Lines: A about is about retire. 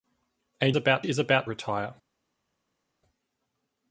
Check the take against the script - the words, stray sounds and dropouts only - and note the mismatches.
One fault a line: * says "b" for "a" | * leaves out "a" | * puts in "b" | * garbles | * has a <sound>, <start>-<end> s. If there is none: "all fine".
all fine